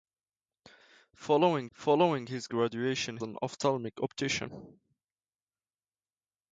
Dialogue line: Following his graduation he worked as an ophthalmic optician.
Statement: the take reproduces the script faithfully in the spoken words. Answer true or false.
false